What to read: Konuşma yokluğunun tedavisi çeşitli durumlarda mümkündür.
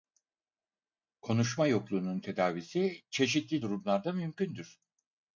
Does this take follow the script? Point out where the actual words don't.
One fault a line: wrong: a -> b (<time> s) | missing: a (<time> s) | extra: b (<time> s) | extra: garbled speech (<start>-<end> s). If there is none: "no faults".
no faults